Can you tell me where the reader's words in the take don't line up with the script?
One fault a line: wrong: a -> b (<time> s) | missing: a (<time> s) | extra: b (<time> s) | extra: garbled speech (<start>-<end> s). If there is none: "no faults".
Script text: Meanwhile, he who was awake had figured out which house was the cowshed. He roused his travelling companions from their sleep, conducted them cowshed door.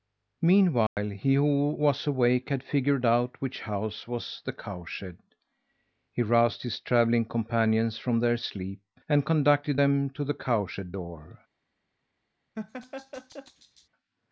extra: and (9.1 s)
extra: to the (10.1 s)